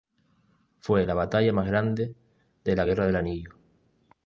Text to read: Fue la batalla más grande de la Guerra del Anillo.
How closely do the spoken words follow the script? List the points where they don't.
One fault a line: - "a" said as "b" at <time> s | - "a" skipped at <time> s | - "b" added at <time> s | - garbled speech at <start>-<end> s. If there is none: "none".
none